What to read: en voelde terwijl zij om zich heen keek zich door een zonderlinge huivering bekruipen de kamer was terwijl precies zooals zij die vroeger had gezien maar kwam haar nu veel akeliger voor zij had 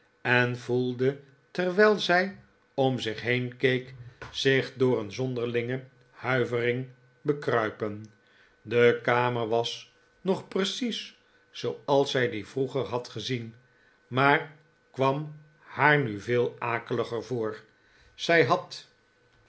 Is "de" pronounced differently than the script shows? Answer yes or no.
no